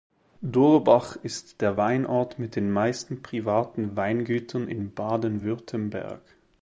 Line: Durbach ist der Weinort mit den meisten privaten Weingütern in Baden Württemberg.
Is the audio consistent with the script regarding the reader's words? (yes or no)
yes